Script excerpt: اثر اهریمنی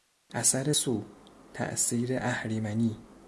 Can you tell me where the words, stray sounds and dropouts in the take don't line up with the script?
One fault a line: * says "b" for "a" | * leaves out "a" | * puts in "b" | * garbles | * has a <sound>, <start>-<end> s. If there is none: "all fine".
* puts in "سو تاثیر"